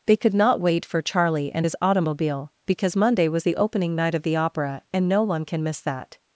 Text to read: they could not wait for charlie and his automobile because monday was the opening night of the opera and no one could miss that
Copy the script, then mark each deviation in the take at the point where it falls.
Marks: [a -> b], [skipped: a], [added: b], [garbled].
they could not wait for charlie and his automobile because monday was the opening night of the opera and no one [could -> can] miss that